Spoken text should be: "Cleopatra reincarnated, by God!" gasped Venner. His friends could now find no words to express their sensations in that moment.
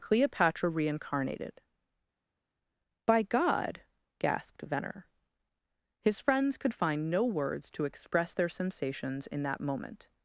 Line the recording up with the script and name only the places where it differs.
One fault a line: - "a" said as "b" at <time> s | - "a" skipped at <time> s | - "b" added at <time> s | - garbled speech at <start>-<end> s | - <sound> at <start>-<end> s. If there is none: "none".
- "now" skipped at 6.7 s